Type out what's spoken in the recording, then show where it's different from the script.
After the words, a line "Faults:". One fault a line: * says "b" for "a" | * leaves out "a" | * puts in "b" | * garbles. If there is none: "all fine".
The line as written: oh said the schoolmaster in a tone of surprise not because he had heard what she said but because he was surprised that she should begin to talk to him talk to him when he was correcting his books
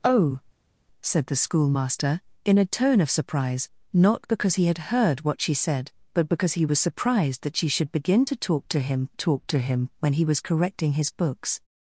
oh said the schoolmaster in a tone of surprise not because he had heard what she said but because he was surprised that she should begin to talk to him talk to him when he was correcting his books
Faults:
all fine